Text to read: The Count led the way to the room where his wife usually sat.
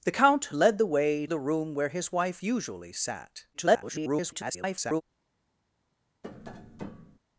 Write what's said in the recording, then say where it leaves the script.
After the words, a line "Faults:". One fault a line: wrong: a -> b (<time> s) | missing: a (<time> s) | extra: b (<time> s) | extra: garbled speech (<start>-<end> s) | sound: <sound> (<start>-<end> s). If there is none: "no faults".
The Count led the way the room where his wife usually sat. [garbled]
Faults:
missing: to (1.3 s)
extra: garbled speech (3.5-5.0 s)
sound: tap (6.2-7.2 s)